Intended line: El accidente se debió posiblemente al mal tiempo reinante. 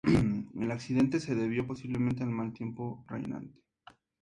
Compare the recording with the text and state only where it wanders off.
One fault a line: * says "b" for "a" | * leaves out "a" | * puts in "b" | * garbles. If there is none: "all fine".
all fine